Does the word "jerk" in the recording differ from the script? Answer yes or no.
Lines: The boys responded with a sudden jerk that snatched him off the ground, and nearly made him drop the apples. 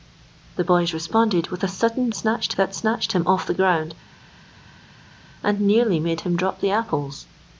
yes